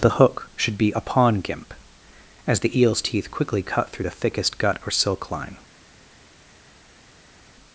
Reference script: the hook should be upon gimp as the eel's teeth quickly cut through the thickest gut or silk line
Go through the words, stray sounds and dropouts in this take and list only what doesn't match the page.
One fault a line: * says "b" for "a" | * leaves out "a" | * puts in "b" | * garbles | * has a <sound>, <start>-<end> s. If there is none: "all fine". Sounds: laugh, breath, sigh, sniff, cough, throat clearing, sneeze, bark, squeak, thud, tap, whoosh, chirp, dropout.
all fine